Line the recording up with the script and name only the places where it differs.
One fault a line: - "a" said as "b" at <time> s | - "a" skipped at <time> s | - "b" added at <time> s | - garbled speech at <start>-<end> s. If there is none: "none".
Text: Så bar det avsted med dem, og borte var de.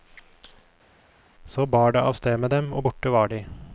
none